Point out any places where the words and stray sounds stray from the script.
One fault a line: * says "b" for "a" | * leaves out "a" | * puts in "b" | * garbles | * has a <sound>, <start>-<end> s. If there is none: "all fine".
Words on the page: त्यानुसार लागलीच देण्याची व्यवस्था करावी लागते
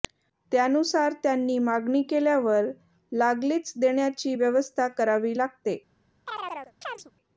* puts in "त्यांनी मागणी केल्यावर"
* has a chirp, 6.3-7.1 s